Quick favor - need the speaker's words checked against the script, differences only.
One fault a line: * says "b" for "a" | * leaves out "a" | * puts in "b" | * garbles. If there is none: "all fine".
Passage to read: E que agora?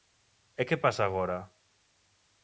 * puts in "pasa"